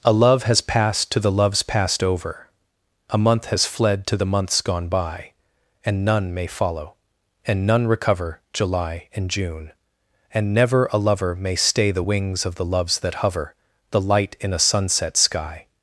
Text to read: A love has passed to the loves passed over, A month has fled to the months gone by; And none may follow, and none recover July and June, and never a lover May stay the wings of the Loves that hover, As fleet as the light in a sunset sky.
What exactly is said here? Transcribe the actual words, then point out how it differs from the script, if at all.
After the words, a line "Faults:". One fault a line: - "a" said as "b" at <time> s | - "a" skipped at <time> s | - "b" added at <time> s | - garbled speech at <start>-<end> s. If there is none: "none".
A love has passed to the loves passed over, A month has fled to the months gone by; And none may follow, and none recover July and June, and never a lover May stay the wings of the Loves that hover, the light in a sunset sky.
Faults:
- "As fleet as" skipped at 13.6 s